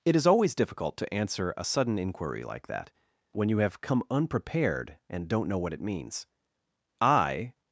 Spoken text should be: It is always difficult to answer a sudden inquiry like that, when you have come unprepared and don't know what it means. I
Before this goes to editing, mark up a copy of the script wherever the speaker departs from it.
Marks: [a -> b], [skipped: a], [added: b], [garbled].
It is always difficult to answer a sudden inquiry like that, when you have come unprepared and don't know what it means. I